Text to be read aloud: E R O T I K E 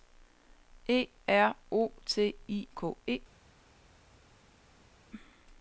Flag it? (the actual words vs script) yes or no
no